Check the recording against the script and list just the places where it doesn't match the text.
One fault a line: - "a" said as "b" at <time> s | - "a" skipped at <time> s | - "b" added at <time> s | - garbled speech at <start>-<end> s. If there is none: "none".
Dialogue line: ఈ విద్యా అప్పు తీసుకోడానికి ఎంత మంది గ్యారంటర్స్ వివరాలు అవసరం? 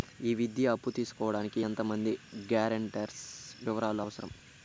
none